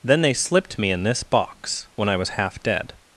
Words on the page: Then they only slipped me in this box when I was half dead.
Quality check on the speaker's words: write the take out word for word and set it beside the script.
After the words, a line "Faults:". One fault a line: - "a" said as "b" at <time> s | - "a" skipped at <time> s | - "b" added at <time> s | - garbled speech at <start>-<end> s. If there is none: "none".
Then they slipped me in this box when I was half dead.
Faults:
- "only" skipped at 0.3 s